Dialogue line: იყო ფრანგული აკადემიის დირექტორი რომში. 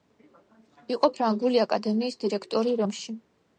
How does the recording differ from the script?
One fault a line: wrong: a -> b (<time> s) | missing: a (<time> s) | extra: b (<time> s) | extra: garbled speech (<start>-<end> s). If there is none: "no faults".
no faults